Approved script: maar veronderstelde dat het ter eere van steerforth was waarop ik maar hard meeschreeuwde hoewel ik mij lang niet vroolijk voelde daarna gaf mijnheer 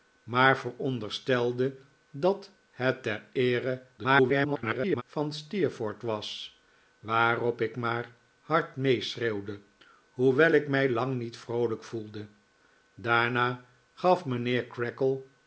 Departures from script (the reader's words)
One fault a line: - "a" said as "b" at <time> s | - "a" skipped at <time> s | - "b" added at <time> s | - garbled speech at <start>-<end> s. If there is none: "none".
- garbled speech at 4.0-5.0 s